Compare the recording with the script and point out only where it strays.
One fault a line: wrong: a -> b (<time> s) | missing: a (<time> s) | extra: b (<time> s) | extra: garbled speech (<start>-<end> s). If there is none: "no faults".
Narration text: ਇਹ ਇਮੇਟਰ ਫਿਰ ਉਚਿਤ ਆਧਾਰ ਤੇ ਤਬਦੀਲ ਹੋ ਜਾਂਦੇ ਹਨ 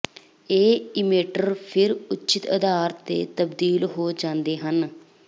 no faults